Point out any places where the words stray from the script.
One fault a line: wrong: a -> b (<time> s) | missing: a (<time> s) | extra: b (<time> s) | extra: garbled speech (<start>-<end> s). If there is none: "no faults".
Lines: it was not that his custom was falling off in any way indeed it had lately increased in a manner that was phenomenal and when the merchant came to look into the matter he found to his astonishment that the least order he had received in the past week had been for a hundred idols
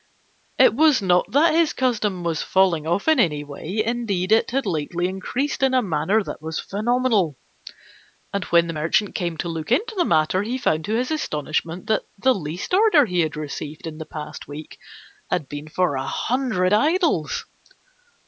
no faults